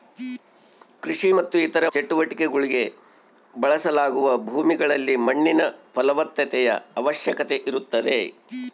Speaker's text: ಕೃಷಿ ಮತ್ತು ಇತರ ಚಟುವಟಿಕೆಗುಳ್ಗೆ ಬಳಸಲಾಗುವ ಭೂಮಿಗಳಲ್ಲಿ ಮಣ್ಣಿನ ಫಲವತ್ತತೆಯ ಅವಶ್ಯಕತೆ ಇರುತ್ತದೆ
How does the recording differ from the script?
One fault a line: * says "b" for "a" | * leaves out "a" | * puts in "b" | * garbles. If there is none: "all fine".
all fine